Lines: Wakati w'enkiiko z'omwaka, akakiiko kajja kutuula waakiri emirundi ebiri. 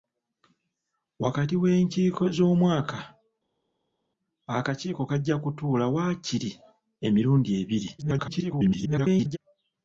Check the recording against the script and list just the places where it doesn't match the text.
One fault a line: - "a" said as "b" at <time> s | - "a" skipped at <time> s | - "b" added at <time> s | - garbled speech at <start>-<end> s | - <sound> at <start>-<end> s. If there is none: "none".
- garbled speech at 8.0-9.4 s